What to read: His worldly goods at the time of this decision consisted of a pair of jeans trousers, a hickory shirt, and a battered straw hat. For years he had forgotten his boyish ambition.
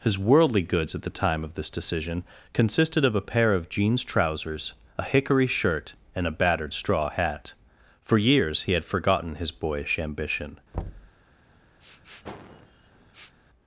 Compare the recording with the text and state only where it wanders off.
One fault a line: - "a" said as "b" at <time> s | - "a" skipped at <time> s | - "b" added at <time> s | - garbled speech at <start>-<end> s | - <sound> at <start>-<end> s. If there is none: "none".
- thud at 10.7-11.1 s
- sniff at 11.8-13.4 s